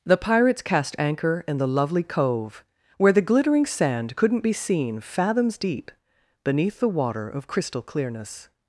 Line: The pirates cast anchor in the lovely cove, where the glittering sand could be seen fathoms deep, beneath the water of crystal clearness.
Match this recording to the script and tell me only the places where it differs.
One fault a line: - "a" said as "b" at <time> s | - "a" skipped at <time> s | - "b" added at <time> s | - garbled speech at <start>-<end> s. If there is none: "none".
- "could" said as "couldn't" at 4.2 s